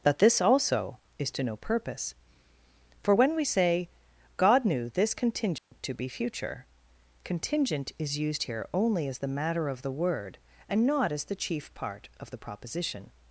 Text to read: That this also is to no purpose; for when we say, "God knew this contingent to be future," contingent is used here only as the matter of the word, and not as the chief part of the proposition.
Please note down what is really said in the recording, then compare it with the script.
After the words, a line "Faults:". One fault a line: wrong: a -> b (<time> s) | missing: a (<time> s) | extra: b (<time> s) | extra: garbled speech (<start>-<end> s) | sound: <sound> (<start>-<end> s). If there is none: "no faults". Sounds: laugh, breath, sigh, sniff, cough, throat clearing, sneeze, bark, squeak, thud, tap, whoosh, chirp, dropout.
That this also is to no purpose; for when we say, "God knew this contingent to be future," contingent is used here only as the matter of the word, and not as the chief part of the proposition.
Faults:
sound: dropout (5.6-5.7 s)